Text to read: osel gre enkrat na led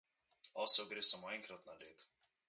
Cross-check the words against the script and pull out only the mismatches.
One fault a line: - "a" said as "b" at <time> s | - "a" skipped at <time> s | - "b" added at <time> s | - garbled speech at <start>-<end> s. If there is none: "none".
- "samo" added at 1.1 s